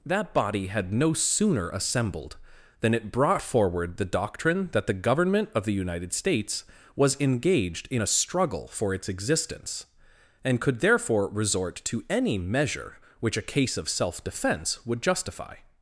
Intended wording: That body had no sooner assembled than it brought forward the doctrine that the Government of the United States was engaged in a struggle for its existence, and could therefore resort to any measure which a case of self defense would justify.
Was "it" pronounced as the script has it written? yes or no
yes